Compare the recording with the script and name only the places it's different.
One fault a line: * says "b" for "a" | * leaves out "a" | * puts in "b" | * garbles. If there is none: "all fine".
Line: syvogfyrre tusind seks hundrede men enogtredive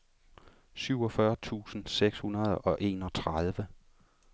* says "og" for "men"